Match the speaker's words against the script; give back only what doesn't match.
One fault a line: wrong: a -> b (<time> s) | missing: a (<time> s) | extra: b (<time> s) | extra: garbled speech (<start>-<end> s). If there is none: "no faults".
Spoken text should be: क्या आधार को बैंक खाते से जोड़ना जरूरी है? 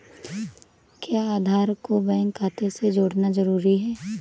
no faults